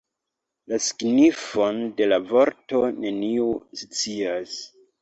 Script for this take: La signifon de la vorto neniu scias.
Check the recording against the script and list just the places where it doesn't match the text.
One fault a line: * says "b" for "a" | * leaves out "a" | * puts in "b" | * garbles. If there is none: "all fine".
all fine